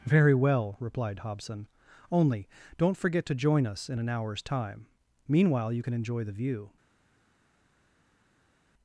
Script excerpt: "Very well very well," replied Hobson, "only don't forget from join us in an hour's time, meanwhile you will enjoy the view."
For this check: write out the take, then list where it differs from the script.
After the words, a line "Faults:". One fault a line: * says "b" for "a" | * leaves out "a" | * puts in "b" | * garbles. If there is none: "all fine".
"Very well," replied Hobson, "only don't forget to join us in an hour's time, meanwhile you can enjoy the view."
Faults:
* leaves out "very well"
* says "to" for "from"
* says "can" for "will"